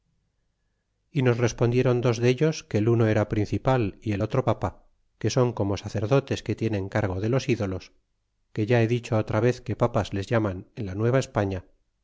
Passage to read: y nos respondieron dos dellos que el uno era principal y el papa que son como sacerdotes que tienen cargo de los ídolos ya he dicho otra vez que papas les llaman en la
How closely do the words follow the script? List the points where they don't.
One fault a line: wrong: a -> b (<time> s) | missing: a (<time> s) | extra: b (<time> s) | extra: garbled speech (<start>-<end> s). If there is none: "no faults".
extra: otro (4.2 s)
extra: que (8.5 s)